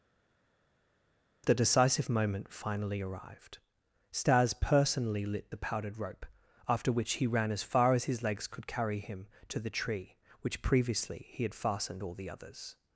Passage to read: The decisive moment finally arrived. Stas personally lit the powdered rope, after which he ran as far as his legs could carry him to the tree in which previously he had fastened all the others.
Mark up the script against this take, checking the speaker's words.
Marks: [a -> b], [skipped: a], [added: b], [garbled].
The decisive moment finally arrived. Stas personally lit the powdered rope, after which he ran as far as his legs could carry him to the tree [skipped: in] which previously he had fastened all the others.